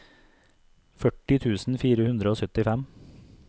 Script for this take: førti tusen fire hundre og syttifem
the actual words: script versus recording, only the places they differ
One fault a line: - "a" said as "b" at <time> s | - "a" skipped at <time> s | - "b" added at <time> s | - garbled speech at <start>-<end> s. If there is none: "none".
none